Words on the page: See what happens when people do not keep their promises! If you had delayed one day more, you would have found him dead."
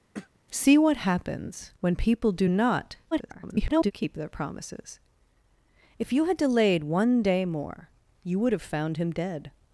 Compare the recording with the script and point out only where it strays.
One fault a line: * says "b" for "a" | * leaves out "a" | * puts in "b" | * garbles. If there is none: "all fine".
* garbles